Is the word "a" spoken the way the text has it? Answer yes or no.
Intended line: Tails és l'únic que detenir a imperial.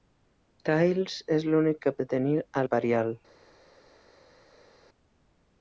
yes